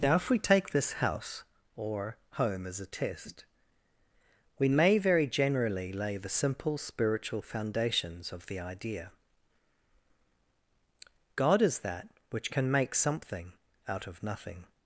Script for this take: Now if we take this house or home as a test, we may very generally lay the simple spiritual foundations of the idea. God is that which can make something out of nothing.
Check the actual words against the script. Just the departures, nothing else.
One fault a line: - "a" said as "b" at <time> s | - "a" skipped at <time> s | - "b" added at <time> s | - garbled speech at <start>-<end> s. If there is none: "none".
none